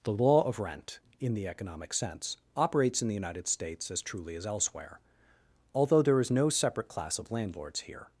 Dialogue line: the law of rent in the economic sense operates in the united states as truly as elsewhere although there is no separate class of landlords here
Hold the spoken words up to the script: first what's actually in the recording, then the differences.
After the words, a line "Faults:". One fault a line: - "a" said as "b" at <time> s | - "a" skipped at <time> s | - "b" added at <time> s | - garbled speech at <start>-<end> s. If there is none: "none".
the law of rent in the economic sense operates in the united states as truly as elsewhere although there is no separate class of landlords here
Faults:
none